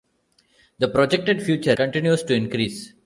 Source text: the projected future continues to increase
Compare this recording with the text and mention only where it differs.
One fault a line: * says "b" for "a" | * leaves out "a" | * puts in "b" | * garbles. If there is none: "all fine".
all fine